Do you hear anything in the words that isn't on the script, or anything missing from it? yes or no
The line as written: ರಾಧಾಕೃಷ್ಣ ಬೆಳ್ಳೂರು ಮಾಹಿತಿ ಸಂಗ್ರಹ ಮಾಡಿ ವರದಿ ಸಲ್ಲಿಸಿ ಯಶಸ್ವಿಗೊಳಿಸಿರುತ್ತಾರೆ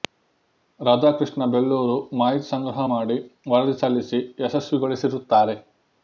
no